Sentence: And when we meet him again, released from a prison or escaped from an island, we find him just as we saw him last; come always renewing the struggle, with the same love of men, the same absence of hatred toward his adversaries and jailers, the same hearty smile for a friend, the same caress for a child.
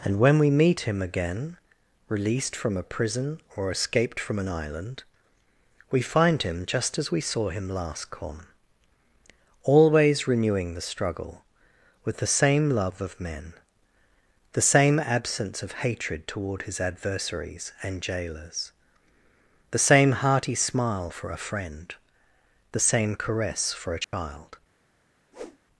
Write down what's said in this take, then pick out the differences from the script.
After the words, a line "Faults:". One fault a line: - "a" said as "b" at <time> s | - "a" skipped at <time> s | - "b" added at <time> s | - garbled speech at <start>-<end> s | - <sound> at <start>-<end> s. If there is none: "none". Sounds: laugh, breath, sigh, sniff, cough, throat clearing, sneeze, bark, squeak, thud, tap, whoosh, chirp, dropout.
And when we meet him again, released from a prison or escaped from an island, we find him just as we saw him last; come always renewing the struggle, with the same love of men, the same absence of hatred toward his adversaries and jailers, the same hearty smile for a friend, the same caress for a child.
Faults:
- dropout at 24.0-24.1 s
- whoosh at 25.3-25.6 s